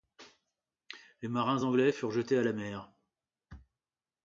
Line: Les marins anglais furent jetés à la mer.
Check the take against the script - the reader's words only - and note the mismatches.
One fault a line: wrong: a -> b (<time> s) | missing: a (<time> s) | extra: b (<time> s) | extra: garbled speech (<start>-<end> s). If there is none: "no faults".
no faults